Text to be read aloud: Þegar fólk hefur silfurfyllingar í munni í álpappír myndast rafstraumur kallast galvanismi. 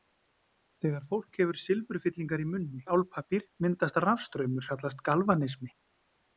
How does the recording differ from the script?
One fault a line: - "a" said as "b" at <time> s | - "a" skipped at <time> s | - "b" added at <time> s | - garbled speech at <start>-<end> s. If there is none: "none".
none